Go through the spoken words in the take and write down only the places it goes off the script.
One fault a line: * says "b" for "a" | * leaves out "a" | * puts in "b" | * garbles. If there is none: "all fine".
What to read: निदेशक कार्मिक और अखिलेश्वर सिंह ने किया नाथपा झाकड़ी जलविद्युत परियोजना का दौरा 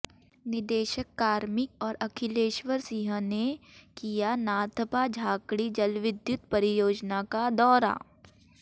all fine